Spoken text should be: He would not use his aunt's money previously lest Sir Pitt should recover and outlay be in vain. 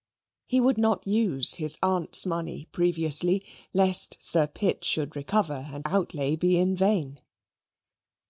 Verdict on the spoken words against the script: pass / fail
pass